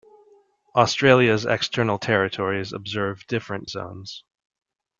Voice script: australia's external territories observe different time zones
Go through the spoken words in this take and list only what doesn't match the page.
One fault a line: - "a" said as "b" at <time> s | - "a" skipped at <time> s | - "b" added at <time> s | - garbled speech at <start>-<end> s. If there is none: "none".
- "time" skipped at 3.7 s